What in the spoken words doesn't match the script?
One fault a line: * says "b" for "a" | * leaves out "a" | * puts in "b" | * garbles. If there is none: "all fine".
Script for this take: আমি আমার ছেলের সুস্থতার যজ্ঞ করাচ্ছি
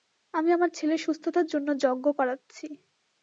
* puts in "জন্য"